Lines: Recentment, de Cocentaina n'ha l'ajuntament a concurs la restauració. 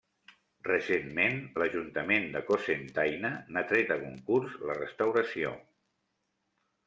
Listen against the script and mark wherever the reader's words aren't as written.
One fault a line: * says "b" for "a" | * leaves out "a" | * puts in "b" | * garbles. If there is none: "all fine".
* puts in "l'ajuntament"
* says "tret" for "l'ajuntament"